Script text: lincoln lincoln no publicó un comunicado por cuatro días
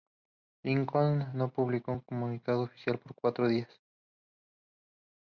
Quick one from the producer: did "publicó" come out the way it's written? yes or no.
yes